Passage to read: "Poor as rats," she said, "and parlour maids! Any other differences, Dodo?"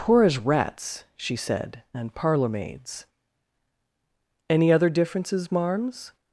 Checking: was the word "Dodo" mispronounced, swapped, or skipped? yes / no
yes